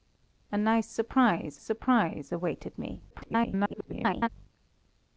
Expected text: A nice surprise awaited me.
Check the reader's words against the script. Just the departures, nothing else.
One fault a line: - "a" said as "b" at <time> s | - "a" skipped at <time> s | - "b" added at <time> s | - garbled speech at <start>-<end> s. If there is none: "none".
- "surprise" added at 1.6 s
- garbled speech at 3.1-4.3 s